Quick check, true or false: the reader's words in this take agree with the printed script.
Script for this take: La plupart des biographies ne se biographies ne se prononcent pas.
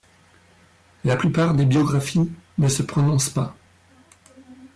false